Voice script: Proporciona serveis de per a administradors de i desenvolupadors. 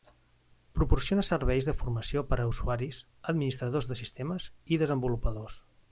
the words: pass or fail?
fail